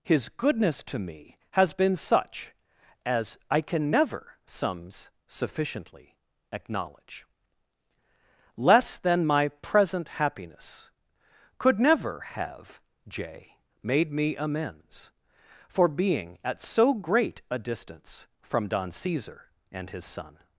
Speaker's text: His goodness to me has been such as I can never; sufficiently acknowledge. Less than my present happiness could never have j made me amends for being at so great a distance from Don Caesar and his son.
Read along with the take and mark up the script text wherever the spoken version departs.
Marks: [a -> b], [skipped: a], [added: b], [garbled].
His goodness to me has been such as I can never; [added: sums] sufficiently acknowledge. Less than my present happiness could never have j made me amends for being at so great a distance from Don Caesar and his son.